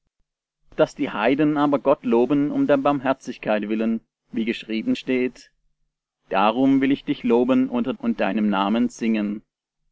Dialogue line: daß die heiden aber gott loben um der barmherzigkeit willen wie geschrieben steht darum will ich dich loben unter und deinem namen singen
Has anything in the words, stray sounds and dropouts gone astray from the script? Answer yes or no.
no